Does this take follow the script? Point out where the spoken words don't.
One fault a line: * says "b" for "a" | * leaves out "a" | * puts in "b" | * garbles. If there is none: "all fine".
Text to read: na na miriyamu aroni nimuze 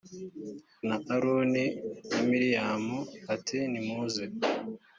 * puts in "aroni"
* says "ati" for "aroni"